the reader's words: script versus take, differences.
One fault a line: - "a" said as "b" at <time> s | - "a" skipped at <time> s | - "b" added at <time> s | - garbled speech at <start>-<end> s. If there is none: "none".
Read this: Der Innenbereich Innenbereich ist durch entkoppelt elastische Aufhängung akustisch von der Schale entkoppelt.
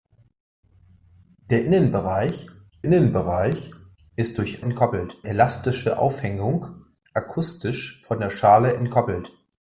none